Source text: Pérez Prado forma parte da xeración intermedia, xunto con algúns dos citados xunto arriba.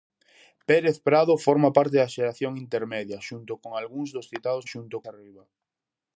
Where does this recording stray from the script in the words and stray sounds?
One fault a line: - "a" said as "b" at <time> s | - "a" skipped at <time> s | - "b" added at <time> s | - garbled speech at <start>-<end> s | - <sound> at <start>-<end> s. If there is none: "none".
none